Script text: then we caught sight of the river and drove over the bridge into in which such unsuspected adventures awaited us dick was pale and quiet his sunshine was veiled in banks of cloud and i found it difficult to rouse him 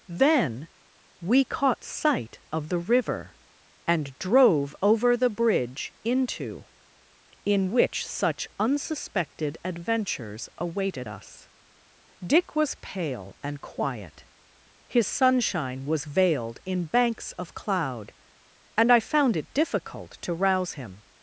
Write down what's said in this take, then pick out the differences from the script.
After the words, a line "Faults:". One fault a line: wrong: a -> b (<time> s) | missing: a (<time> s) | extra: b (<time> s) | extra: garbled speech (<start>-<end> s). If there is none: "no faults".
then we caught sight of the river and drove over the bridge into in which such unsuspected adventures awaited us dick was pale and quiet his sunshine was veiled in banks of cloud and i found it difficult to rouse him
Faults:
no faults